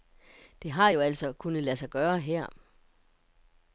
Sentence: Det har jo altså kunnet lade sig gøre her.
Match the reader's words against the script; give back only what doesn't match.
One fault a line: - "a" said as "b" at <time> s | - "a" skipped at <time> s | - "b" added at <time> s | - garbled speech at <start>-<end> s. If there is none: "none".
none